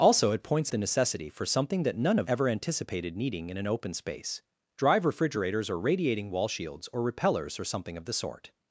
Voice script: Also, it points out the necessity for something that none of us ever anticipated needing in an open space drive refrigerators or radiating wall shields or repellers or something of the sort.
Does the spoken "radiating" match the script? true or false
true